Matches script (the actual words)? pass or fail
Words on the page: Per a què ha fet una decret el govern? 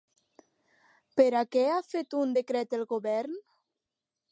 fail